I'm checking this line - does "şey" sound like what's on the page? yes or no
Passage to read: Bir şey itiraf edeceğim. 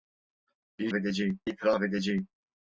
no